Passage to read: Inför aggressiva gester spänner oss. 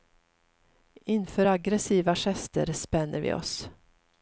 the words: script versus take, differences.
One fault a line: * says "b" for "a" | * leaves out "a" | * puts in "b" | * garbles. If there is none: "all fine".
* puts in "vi"